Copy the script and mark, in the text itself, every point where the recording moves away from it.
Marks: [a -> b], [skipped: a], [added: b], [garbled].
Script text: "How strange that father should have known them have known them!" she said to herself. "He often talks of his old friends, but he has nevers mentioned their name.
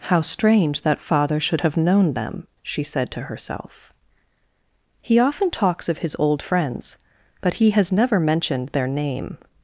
"How strange that father should have known them [skipped: have known them!"] she said to herself. "He often talks of his old friends, but he has [nevers -> never] mentioned their name.